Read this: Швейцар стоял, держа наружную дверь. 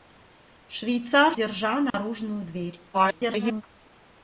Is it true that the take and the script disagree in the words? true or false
true